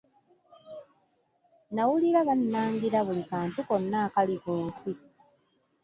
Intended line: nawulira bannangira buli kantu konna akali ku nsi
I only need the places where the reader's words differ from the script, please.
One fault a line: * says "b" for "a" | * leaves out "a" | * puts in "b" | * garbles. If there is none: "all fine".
all fine